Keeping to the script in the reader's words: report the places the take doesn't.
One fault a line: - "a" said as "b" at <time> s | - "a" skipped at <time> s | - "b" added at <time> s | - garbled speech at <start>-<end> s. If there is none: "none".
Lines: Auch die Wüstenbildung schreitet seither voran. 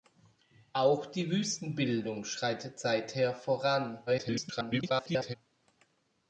- garbled speech at 4.1-5.4 s